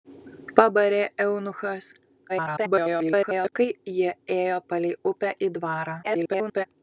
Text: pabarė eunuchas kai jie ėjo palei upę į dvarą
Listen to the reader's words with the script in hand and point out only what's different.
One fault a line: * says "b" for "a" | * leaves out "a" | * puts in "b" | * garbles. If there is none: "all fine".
* garbles
* garbles